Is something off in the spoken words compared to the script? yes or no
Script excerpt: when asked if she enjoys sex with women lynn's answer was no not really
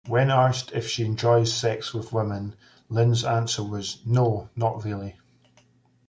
no